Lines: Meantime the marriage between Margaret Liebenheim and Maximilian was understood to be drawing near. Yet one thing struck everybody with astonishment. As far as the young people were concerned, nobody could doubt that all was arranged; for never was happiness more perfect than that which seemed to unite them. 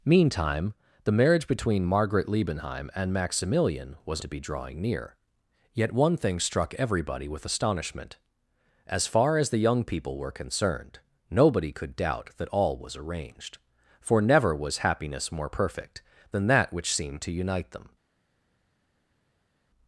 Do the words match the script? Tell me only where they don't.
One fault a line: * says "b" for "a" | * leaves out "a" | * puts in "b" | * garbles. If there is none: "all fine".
* leaves out "understood"